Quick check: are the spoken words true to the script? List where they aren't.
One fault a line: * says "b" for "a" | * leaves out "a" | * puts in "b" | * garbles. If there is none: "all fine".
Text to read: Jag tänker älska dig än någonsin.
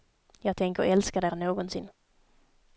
all fine